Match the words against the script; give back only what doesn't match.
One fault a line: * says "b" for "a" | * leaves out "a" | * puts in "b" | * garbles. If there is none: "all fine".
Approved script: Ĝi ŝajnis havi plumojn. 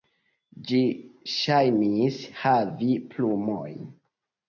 all fine